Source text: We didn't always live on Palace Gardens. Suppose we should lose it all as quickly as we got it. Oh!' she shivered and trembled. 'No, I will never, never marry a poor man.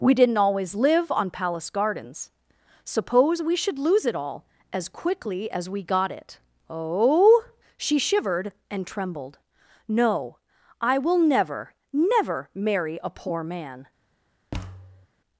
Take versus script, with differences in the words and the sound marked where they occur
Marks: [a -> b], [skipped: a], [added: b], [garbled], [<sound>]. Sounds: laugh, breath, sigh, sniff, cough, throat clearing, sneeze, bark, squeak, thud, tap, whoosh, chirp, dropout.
We didn't always live on Palace Gardens. Suppose we should lose it all as quickly as we got it. Oh!' she shivered and trembled. 'No, I will never, never marry a poor man. [thud]